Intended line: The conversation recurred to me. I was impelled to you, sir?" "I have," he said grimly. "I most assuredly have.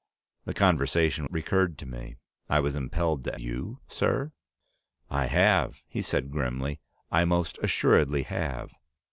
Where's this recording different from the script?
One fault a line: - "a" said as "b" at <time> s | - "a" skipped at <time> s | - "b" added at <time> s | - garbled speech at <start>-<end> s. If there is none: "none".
none